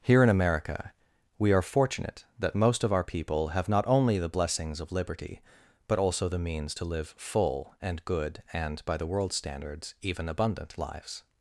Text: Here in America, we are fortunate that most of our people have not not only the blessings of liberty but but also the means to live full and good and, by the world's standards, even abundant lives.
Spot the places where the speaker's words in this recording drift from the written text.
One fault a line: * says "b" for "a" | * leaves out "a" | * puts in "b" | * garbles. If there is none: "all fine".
* leaves out "not"
* leaves out "but"